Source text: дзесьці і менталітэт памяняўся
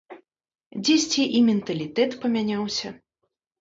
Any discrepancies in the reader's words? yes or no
no